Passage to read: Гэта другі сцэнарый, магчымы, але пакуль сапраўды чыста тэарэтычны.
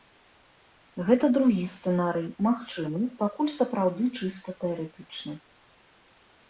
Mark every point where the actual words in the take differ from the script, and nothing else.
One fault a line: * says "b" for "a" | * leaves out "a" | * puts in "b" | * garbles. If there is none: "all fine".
* leaves out "але"